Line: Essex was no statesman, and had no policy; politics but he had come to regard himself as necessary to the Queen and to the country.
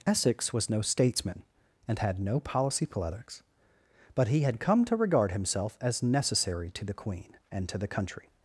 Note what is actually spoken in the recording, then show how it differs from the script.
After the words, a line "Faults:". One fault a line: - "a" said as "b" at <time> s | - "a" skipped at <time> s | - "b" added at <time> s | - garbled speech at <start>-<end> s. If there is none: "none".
Essex was no statesman, and had no policy; politics but he had come to regard himself as necessary to the Queen and to the country.
Faults:
none